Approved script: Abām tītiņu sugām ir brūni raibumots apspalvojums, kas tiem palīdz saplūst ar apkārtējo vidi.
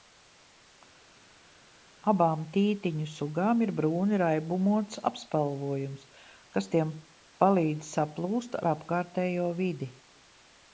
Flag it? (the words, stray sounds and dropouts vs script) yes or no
no